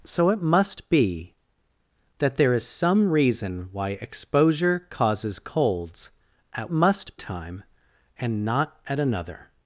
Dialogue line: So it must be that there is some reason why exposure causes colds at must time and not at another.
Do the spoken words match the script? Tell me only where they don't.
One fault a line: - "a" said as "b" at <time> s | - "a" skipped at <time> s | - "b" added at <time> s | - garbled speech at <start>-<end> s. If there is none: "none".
none